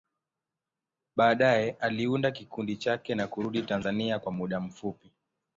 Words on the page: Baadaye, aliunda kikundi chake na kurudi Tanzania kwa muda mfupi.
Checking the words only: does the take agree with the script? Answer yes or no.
yes